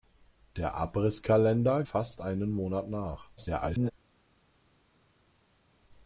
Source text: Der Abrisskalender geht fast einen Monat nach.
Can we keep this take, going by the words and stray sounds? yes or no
no